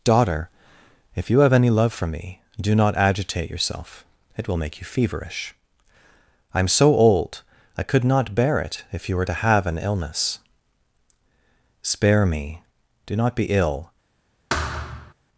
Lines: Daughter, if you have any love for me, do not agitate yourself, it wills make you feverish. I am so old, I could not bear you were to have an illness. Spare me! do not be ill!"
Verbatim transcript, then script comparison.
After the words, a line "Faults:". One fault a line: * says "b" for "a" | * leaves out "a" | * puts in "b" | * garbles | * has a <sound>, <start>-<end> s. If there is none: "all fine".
Daughter, if you have any love for me, do not agitate yourself, it will make you feverish. I am so old, I could not bear it if you were to have an illness. Spare me! do not be ill!"
Faults:
* says "will" for "wills"
* puts in "it if"
* has a thud, 14.5-15.1 s